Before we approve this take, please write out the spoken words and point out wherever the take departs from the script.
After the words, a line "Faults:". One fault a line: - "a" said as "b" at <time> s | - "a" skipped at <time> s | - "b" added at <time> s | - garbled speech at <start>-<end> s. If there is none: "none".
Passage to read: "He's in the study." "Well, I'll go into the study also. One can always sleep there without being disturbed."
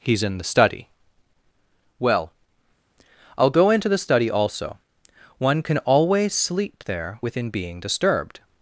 "He's in the study." "Well, I'll go into the study also. One can always sleep there within being disturbed."
Faults:
- "without" said as "within" at 7.2 s